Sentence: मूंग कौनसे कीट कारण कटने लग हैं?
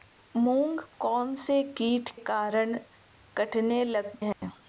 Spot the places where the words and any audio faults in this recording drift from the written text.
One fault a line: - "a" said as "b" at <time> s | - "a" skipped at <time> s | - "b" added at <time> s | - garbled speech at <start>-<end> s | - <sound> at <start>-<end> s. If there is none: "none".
- dropout at 4.3-4.4 s